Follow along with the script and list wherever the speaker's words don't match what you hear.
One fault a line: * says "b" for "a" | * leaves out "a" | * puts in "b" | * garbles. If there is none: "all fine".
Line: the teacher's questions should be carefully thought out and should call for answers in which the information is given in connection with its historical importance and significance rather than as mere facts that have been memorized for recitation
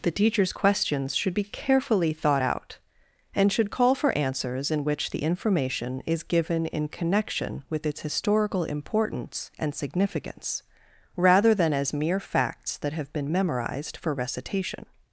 all fine